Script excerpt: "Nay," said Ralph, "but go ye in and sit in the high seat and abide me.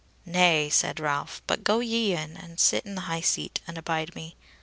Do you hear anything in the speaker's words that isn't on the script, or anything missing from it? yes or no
no